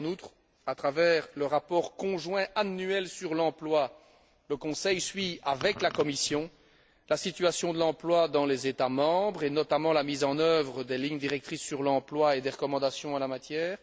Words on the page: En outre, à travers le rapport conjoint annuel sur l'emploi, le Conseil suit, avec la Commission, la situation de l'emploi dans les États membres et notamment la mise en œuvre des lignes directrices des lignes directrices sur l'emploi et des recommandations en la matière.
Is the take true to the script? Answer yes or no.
no